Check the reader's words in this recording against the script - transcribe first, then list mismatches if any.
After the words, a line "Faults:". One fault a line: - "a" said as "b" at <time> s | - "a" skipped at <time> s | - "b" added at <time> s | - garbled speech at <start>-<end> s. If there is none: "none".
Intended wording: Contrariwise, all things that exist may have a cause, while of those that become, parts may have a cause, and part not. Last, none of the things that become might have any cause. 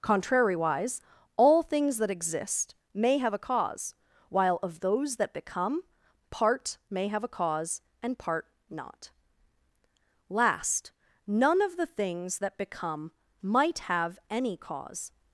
Contrariwise, all things that exist may have a cause, while of those that become, part may have a cause, and part not. Last, none of the things that become might have any cause.
Faults:
- "parts" said as "part" at 6.3 s